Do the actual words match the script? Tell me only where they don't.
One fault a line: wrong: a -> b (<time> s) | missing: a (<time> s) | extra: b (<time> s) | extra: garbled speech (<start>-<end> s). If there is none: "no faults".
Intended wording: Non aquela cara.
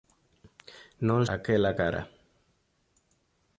no faults